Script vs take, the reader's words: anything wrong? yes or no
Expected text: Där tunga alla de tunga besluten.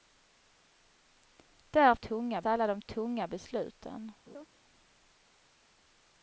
no